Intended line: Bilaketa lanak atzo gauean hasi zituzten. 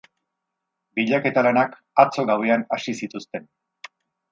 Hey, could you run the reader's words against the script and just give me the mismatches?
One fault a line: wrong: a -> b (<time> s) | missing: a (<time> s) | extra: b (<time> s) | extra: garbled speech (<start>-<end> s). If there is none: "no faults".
no faults